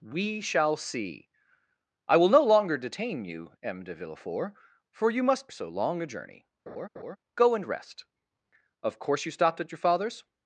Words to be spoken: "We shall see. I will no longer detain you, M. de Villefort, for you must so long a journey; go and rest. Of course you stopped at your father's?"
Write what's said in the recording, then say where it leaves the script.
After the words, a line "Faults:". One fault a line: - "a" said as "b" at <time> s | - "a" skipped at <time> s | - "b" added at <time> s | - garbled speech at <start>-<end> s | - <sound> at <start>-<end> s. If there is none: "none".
"We shall see. I will no longer detain you, M. de Villefort, for you must so long a journey; go and rest. Of course you stopped at your father's?"
Faults:
- laugh at 6.7-7.2 s